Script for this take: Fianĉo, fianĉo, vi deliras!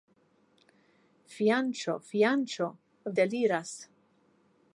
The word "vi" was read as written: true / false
false